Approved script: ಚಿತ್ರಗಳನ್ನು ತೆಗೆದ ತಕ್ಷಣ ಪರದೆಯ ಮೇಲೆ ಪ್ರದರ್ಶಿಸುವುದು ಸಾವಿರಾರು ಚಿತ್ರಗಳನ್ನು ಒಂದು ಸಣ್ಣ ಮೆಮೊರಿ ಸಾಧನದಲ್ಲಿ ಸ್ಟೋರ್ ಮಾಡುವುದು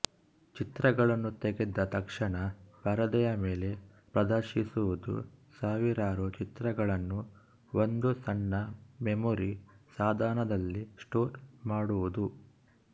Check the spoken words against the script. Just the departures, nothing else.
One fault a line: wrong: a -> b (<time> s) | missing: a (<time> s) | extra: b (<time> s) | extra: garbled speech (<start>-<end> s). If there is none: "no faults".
no faults